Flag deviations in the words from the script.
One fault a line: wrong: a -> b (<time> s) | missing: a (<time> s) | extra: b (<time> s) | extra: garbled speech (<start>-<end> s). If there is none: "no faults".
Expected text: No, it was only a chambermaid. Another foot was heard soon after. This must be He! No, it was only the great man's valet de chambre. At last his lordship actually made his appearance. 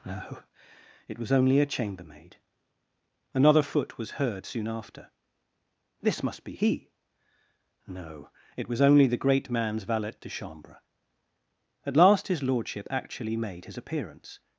no faults